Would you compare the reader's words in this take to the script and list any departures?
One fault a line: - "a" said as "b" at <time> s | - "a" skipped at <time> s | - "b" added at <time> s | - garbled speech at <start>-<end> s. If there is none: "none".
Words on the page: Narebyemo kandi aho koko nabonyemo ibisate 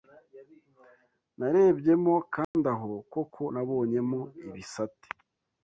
none